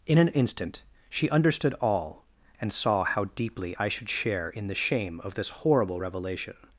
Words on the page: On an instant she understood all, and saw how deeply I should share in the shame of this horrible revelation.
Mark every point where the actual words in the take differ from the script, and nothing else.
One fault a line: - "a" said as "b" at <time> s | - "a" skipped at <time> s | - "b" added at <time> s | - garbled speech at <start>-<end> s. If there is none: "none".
- "On" said as "In" at 0.1 s